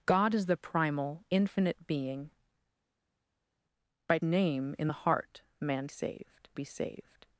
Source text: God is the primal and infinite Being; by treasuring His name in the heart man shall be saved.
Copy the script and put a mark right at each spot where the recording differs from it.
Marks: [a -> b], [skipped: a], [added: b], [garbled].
God is the primal [skipped: and] infinite Being; by [skipped: treasuring His] name in the heart man [shall -> saved] be saved.